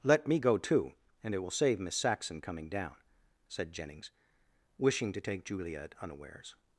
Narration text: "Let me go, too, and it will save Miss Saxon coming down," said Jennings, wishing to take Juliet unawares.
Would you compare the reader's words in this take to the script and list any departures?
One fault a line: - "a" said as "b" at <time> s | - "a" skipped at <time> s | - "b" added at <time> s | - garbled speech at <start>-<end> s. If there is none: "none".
none